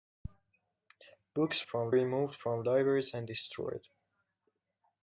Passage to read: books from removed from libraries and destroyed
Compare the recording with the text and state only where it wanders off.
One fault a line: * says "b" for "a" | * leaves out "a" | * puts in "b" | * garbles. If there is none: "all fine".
all fine